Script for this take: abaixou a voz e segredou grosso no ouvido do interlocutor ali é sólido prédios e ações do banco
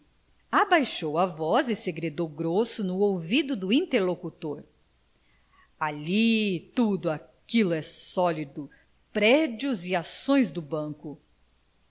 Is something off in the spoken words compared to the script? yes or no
yes